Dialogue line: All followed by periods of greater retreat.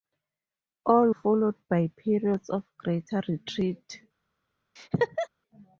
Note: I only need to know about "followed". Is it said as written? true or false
true